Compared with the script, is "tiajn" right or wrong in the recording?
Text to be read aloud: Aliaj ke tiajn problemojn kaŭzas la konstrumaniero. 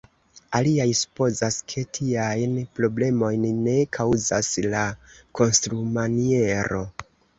right